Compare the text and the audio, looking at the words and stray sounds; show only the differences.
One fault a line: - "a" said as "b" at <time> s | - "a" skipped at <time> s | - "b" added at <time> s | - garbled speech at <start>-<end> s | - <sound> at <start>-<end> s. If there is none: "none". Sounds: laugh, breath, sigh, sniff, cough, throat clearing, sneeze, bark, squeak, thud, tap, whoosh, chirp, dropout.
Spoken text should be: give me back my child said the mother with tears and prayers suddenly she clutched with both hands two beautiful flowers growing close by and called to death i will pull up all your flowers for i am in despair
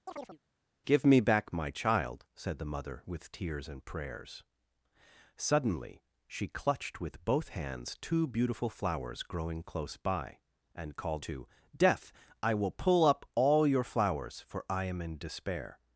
- chirp at 0.1-0.4 s